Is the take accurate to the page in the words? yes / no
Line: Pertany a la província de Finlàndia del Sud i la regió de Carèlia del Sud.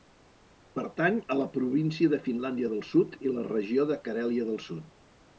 yes